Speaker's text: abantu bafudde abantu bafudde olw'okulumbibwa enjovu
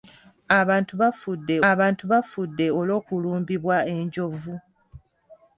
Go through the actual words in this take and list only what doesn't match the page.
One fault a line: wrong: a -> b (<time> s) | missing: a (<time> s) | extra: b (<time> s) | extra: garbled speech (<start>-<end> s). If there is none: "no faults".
no faults